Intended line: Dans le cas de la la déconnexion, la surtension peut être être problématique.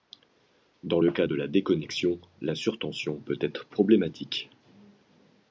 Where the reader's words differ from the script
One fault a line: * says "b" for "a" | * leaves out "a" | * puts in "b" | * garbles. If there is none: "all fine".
* leaves out "la"
* leaves out "être"